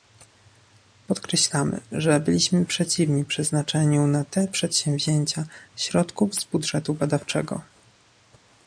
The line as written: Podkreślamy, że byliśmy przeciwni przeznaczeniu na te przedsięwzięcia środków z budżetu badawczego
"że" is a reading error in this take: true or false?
false